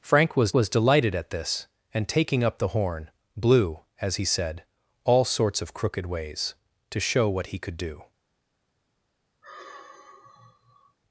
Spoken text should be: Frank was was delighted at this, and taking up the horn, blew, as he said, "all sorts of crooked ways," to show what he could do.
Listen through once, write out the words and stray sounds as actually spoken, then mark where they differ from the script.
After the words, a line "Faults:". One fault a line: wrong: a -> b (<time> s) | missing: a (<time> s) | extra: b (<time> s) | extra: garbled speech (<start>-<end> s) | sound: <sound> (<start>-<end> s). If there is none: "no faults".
Frank was was delighted at this, and taking up the horn, blew, as he said, "all sorts of crooked ways," to show what he could do.
Faults:
sound: sigh (9.4-11.0 s)